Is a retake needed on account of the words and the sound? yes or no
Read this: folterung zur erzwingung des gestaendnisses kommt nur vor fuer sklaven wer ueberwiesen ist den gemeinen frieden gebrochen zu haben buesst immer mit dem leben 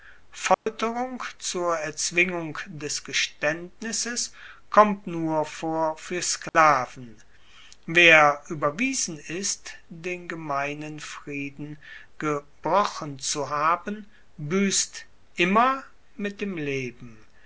yes